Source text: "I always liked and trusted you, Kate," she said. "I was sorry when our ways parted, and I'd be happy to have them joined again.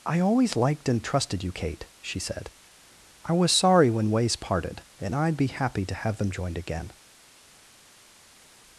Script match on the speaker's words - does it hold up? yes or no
no